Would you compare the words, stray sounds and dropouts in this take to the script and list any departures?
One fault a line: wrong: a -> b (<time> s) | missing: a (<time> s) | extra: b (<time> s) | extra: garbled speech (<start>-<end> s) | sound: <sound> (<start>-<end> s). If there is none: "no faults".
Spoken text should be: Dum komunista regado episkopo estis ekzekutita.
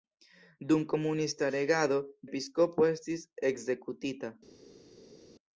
no faults